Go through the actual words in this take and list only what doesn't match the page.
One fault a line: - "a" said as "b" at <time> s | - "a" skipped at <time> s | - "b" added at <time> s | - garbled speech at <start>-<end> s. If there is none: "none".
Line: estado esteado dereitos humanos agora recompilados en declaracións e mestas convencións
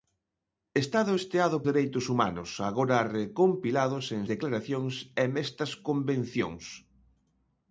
none